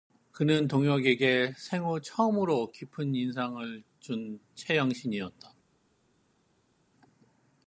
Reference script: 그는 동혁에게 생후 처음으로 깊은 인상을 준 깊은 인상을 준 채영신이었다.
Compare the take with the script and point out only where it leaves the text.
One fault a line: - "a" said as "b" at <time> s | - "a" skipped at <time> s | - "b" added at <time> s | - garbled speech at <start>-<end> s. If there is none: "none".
- "깊은 인상을 준" skipped at 4.4 s